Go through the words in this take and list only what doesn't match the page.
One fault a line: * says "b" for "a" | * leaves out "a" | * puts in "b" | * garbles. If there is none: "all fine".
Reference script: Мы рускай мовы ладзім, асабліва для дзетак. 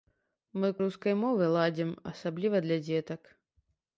all fine